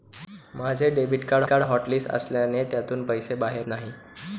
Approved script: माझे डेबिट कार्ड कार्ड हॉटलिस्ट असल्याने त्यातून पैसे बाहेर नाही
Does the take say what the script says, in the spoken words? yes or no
yes